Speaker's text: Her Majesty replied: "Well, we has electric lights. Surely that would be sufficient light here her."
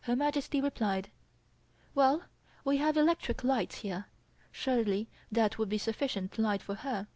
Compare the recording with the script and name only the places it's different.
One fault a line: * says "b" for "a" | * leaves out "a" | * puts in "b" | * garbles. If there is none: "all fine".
* says "have" for "has"
* puts in "here"
* says "for" for "here"